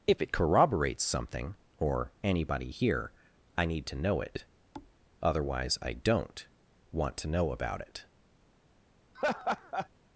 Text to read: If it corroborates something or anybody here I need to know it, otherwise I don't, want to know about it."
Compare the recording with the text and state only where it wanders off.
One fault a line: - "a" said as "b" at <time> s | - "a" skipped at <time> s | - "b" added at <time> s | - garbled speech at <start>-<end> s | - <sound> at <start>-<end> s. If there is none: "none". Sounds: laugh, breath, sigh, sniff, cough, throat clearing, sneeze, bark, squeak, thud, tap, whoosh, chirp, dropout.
- thud at 4.7-4.9 s
- laugh at 9.1-9.9 s